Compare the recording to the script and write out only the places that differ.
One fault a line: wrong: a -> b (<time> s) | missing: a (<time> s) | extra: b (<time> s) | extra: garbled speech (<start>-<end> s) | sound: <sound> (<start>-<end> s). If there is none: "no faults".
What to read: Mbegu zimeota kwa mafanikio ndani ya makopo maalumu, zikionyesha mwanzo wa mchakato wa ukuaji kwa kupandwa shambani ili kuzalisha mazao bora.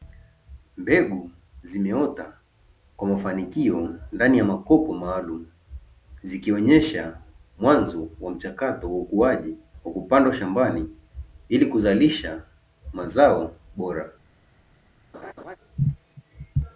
sound: laugh (15.1-15.6 s)